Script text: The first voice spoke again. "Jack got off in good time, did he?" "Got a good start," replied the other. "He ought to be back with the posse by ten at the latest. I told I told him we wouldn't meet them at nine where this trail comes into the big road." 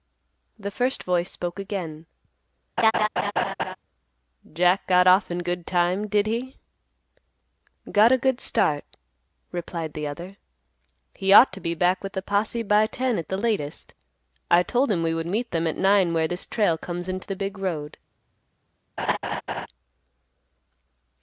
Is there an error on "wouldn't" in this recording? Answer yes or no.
yes